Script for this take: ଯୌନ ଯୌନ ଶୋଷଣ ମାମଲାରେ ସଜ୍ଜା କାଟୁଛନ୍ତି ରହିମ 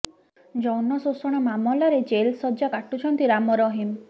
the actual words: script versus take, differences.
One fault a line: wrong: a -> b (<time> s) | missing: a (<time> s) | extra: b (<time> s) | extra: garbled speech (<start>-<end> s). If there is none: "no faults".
missing: ଯୌନ (1.0 s)
extra: ଜେଲ୍ (2.1 s)
extra: ରାମ (3.3 s)